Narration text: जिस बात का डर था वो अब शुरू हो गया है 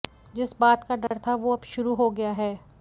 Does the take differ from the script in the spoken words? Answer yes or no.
no